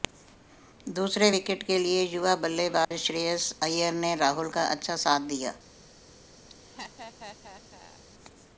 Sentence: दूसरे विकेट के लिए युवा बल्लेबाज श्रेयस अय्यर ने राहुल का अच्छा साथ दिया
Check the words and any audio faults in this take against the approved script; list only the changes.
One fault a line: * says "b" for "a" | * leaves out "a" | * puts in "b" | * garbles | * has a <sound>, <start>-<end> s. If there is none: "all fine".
* has a dropout, 2.8-2.9 s
* has a laugh, 6.5-8.0 s